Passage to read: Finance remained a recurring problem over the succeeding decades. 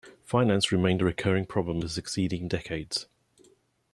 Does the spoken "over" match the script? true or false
false